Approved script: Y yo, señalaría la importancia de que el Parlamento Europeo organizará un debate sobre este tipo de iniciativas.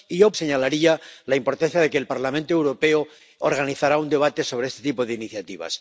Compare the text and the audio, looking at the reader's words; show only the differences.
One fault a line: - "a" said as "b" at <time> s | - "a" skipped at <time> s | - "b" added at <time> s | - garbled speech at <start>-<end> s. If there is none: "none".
none